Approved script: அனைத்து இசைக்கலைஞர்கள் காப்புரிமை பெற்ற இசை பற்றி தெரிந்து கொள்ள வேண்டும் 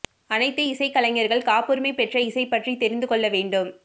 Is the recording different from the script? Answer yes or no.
no